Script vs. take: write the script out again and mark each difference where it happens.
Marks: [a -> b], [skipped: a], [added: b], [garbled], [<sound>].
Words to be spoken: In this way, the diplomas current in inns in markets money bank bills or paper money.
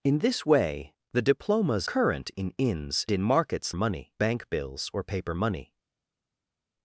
In this way, the diplomas current in inns in markets money bank bills or paper money.